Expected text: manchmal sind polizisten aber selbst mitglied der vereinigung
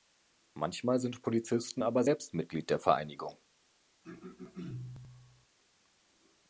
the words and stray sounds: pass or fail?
fail